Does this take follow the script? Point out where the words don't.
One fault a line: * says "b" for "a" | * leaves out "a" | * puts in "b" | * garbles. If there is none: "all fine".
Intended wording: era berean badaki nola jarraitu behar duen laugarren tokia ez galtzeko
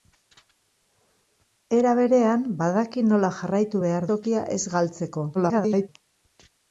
* leaves out "duen laugarren"
* garbles